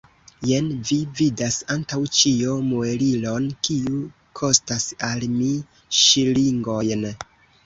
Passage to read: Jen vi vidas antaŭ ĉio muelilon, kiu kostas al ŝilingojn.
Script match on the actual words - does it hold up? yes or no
no